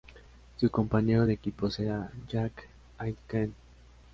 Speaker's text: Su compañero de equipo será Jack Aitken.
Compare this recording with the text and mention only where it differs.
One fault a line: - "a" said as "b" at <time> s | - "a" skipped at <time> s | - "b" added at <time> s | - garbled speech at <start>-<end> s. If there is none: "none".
none